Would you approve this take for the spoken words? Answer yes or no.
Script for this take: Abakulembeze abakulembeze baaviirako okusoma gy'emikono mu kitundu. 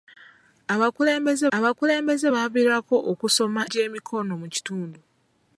yes